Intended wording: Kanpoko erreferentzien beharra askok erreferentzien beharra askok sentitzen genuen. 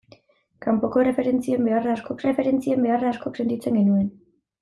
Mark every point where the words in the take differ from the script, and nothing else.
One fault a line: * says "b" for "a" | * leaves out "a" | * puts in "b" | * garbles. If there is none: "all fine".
all fine